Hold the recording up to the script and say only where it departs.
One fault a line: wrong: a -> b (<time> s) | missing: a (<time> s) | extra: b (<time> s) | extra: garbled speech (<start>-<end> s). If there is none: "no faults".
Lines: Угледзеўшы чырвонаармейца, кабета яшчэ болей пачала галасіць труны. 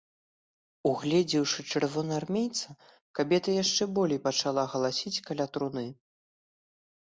extra: каля (5.3 s)